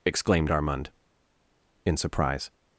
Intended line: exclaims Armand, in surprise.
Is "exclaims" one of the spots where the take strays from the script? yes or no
yes